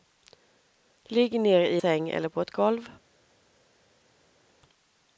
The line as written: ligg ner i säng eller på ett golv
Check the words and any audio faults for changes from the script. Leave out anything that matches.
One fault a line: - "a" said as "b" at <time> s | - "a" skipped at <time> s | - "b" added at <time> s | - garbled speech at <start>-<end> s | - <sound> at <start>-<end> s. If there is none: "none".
none